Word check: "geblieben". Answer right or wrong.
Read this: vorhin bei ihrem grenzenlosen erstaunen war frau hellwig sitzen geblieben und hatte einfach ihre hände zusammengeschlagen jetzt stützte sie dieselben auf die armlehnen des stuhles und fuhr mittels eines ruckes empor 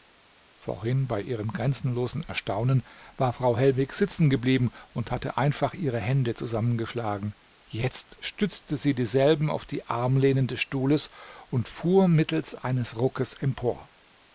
right